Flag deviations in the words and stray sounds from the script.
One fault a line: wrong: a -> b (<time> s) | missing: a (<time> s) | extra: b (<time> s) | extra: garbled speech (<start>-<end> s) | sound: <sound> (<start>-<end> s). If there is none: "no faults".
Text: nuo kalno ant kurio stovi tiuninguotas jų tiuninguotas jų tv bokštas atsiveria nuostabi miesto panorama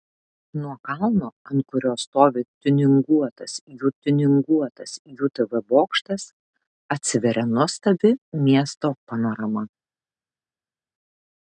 no faults